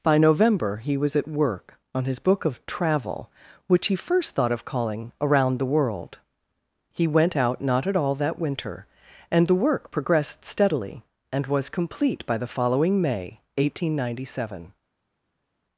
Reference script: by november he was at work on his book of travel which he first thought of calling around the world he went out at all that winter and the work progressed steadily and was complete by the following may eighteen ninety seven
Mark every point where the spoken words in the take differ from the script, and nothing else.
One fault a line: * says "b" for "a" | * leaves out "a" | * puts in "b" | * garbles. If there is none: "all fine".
* puts in "not"